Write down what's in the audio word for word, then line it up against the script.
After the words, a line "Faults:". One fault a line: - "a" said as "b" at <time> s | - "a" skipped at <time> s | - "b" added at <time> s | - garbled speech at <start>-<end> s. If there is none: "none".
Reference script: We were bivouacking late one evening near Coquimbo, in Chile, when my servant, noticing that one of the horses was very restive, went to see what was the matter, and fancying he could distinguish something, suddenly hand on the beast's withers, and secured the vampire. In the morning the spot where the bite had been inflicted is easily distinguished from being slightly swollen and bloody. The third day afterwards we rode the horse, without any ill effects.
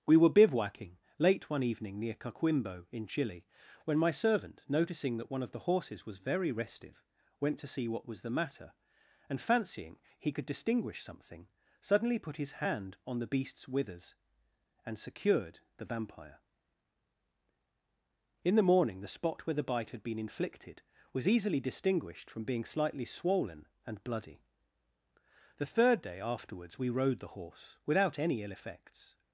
We were bivouacking late one evening near Coquimbo, in Chile, when my servant, noticing that one of the horses was very restive, went to see what was the matter, and fancying he could distinguish something, suddenly put his hand on the beast's withers, and secured the vampire. In the morning the spot where the bite had been inflicted was easily distinguished from being slightly swollen and bloody. The third day afterwards we rode the horse, without any ill effects.
Faults:
- "put his" added at 12.2 s
- "is" said as "was" at 21.1 s